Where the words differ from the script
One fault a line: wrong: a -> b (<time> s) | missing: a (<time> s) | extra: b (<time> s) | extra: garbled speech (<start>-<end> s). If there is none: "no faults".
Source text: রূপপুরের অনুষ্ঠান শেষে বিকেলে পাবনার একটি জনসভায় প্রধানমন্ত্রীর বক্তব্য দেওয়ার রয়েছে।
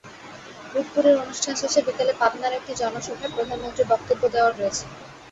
no faults